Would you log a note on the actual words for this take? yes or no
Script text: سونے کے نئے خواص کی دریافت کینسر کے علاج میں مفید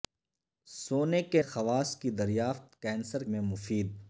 yes